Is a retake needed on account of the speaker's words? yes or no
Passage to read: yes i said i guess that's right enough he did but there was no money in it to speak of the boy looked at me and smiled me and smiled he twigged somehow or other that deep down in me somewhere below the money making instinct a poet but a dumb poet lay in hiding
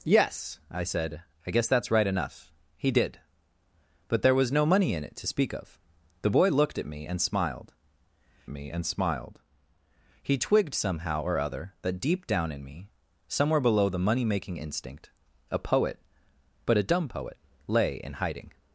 no